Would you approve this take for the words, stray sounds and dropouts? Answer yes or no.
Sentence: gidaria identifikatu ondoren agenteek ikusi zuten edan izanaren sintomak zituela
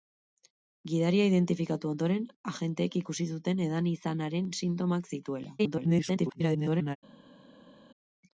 no